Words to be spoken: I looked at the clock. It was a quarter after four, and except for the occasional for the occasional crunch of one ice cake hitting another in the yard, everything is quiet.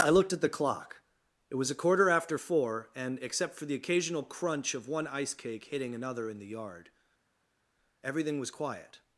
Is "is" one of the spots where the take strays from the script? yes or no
yes